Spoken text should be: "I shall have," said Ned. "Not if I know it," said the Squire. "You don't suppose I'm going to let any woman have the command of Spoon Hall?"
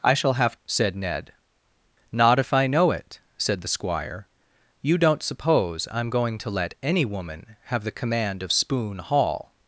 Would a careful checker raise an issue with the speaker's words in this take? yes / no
no